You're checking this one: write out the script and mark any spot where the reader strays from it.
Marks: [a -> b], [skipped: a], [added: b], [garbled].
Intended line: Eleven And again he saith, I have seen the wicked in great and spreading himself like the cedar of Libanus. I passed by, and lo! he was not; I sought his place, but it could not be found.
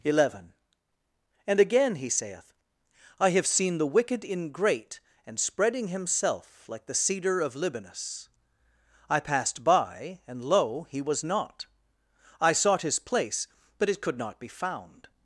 Eleven And again he saith, I have seen the wicked in great and spreading himself like the cedar of Libanus. I passed by, and lo! he was not; I sought his place, but it could not be found.